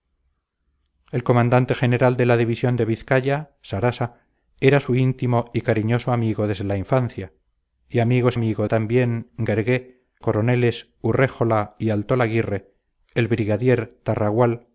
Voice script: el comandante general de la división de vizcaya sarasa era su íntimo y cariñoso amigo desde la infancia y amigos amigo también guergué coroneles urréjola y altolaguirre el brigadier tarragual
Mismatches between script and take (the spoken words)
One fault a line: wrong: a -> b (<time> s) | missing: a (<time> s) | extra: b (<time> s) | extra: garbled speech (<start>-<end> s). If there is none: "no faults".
no faults